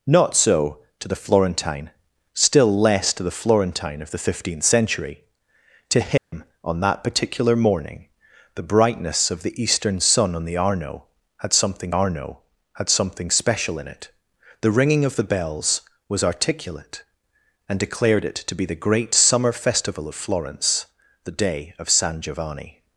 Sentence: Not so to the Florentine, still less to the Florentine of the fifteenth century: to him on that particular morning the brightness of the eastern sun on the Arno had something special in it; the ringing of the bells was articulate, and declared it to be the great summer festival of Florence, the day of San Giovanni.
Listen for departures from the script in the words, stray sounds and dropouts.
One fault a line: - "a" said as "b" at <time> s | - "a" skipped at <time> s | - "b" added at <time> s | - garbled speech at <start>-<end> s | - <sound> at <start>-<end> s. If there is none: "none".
- dropout at 6.2-6.3 s
- "Arno had something" added at 11.9 s